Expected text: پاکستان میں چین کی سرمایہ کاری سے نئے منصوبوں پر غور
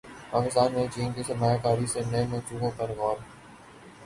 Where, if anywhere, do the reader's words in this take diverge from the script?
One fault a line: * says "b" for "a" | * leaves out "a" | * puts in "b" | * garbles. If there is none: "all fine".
all fine